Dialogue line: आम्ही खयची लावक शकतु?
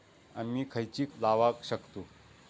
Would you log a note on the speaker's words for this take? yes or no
no